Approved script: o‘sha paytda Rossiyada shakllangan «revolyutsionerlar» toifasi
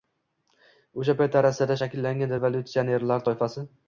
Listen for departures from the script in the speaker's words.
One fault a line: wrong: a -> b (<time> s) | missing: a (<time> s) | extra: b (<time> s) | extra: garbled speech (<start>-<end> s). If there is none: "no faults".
no faults